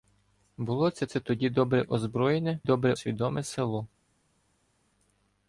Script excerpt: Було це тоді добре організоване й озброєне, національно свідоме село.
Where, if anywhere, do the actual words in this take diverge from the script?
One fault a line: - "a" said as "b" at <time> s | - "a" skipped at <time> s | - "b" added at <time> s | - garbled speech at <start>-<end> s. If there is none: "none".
- "це" added at 1.0 s
- "організоване" skipped at 1.8 s
- "національно" said as "добре" at 2.6 s